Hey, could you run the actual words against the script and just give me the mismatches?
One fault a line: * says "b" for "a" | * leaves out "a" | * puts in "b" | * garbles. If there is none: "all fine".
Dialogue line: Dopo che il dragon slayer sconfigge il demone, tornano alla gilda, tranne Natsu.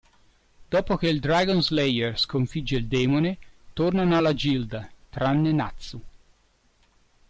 all fine